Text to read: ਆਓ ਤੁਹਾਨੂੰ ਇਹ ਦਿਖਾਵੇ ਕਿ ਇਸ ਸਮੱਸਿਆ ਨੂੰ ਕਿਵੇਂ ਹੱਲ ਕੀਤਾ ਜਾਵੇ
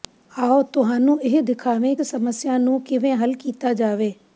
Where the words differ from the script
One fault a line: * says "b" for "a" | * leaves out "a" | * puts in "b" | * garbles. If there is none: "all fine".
* leaves out "ਕਿ ਇਸ"